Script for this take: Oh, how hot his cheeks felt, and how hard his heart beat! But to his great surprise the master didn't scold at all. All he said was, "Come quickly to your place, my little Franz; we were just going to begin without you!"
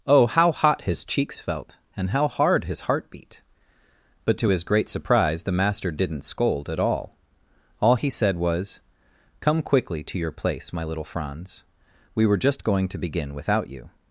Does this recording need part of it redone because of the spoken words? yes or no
no